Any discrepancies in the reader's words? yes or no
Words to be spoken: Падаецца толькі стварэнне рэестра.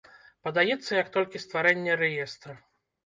yes